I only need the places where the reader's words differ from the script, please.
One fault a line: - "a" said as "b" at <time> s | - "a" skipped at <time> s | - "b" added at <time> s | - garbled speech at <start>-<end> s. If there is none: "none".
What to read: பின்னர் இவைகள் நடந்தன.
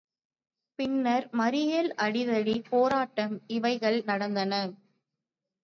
- "மறியல் அடிதடி போராட்டம்" added at 1.3 s